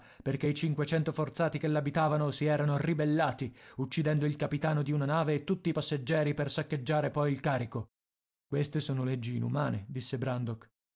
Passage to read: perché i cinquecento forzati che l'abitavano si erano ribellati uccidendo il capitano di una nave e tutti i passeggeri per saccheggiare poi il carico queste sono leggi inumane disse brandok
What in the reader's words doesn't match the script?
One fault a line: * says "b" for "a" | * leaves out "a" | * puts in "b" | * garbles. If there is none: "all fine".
all fine